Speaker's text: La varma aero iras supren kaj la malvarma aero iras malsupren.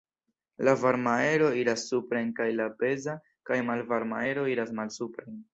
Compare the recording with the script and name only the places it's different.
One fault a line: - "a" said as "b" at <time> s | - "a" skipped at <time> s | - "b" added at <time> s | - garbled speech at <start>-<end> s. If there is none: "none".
- "peza kaj" added at 2.8 s